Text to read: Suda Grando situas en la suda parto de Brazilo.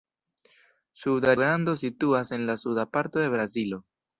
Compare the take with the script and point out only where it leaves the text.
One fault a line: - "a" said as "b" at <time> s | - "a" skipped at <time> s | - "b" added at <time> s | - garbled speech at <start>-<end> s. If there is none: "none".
none